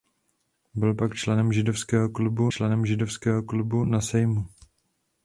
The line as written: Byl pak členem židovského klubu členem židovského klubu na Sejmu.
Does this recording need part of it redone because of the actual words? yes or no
no